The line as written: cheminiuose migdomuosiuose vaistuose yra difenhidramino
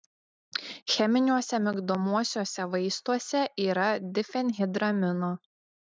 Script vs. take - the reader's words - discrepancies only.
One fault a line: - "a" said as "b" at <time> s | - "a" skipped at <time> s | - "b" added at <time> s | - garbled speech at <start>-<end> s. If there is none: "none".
none